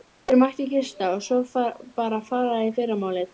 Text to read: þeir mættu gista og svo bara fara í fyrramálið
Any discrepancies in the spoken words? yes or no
no